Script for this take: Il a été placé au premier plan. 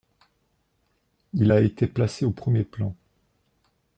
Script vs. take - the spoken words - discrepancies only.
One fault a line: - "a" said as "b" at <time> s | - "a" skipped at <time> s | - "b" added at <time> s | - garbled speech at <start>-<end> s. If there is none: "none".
none